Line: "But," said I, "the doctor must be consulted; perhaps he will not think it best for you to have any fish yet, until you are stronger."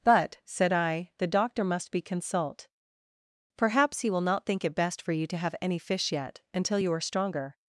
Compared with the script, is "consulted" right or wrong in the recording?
wrong